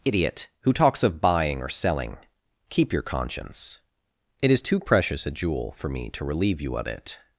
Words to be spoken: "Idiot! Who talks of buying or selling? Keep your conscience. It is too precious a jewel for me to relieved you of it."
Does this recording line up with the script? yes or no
no